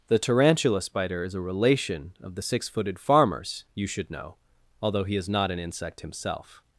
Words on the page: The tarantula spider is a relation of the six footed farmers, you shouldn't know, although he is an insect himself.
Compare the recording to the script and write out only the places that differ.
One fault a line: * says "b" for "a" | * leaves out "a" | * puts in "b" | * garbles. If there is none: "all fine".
* says "should" for "shouldn't"
* puts in "not"